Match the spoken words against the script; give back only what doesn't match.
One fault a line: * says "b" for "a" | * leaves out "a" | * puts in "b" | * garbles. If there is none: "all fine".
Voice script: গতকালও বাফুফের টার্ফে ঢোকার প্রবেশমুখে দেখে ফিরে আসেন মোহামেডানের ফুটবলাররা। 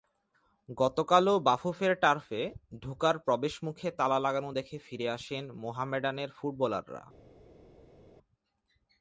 * puts in "তালা লাগানো"